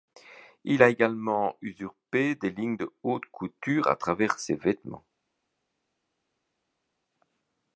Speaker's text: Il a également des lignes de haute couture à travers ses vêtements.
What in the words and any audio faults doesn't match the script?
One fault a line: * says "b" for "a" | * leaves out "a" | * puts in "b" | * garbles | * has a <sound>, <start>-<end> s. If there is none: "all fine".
* puts in "usurpé"